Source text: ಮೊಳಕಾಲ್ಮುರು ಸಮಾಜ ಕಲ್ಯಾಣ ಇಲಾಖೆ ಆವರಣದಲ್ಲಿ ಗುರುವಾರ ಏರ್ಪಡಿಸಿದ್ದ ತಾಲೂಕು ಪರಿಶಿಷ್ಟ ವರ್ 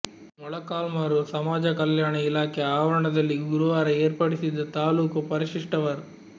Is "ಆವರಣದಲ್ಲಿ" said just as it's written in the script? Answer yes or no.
yes